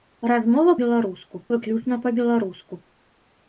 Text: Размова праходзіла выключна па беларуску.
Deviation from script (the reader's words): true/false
true